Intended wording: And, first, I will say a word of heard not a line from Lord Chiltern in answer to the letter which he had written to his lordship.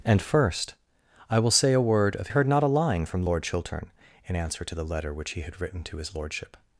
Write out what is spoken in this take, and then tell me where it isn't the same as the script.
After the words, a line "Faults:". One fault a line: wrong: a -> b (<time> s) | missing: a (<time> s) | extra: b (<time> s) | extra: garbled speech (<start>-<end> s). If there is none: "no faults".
And, first, I will say a word of heard not a line from Lord Chiltern in answer to the letter which he had written to his lordship.
Faults:
no faults